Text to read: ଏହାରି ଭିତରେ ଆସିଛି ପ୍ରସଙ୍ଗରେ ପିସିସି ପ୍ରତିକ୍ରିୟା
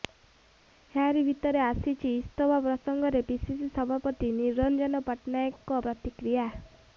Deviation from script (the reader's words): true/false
true